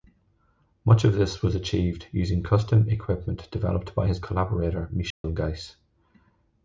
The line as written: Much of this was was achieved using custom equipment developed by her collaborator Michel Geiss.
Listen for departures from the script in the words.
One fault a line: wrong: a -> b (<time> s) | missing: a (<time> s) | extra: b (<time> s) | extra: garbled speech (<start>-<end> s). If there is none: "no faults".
missing: was (1.6 s)
wrong: her -> his (4.0 s)